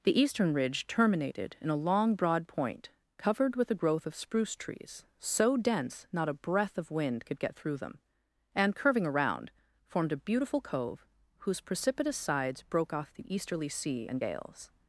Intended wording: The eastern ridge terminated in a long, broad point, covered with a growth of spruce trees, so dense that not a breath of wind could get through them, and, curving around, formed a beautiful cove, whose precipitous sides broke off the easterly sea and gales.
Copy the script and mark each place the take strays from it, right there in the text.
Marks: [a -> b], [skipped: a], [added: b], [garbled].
The eastern ridge terminated in a long, broad point, covered with a growth of spruce trees, so dense [skipped: that] not a breath of wind could get through them, and, curving around, formed a beautiful cove, whose precipitous sides broke off the easterly sea and gales.